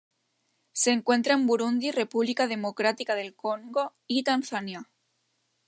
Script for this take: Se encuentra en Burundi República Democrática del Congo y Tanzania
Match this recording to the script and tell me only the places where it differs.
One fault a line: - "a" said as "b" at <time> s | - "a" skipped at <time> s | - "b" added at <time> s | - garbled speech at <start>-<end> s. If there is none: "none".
none